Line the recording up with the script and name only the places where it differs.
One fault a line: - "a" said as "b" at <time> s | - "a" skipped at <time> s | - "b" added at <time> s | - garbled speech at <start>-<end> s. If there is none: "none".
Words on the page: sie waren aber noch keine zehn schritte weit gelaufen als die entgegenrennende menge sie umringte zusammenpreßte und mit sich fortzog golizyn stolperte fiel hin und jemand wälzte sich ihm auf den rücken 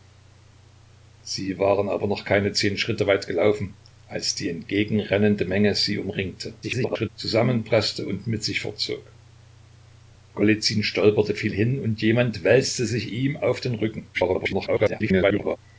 - garbled speech at 6.6-7.1 s
- garbled speech at 14.1-15.6 s